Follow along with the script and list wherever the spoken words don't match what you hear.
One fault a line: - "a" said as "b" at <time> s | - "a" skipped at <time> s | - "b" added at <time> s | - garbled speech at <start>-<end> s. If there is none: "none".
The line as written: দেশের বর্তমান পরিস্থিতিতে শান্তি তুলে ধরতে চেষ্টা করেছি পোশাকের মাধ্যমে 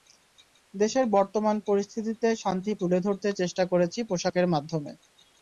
none